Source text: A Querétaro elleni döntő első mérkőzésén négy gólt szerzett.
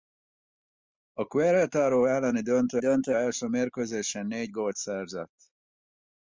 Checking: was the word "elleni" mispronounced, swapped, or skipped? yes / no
no